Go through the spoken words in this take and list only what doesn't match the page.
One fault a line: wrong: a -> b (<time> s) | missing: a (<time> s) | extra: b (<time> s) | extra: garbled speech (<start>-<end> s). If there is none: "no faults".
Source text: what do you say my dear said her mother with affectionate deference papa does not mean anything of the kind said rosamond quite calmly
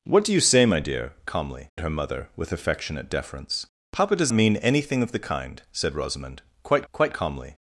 wrong: said -> calmly (1.3 s)
missing: not (4.3 s)
extra: quite (6.9 s)